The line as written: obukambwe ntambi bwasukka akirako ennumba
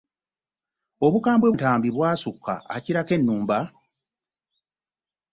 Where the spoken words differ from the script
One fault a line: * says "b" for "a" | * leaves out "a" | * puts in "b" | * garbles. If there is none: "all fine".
all fine